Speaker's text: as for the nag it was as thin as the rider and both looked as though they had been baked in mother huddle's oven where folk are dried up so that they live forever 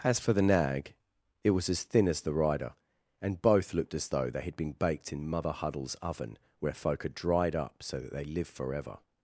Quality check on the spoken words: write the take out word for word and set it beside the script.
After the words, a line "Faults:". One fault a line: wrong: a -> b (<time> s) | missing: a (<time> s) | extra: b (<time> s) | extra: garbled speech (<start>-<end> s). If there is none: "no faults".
as for the nag it was as thin as the rider and both looked as though they had been baked in mother huddle's oven where folk are dried up so that they live forever
Faults:
no faults